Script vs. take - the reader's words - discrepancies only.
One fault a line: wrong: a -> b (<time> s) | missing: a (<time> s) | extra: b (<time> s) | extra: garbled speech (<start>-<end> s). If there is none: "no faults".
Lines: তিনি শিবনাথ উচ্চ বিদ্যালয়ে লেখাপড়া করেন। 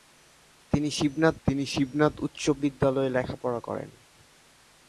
extra: তিনি শিবনাথ (1.5 s)